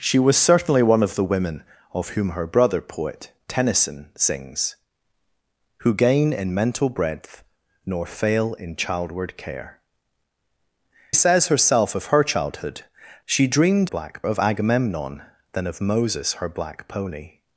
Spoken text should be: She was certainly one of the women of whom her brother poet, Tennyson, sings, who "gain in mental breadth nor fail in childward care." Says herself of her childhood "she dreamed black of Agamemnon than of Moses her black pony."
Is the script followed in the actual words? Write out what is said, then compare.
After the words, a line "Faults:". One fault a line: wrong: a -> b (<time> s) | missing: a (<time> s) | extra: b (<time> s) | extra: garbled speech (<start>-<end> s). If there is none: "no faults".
She was certainly one of the women of whom her brother poet, Tennyson, sings, who "gain in mental breadth nor fail in childward care." Says herself of her childhood "she dreamed black of Agamemnon than of Moses her black pony."
Faults:
no faults